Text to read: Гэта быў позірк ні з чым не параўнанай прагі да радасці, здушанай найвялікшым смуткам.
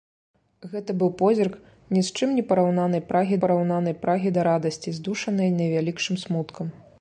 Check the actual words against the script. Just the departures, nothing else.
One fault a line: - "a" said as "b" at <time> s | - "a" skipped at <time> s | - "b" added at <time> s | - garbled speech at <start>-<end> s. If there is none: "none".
- "параўнанай прагі" added at 3.4 s